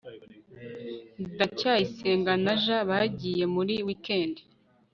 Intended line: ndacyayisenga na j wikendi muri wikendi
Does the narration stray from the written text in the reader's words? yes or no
yes